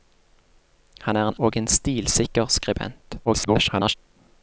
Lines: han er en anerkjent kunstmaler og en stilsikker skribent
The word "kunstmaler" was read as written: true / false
false